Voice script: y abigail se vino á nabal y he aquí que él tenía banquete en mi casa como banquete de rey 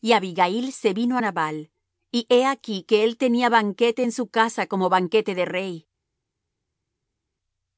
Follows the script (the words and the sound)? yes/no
no